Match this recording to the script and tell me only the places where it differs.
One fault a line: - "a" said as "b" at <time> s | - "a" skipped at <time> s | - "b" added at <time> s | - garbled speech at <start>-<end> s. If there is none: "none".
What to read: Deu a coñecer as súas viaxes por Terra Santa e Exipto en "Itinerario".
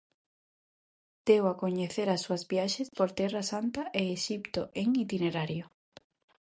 none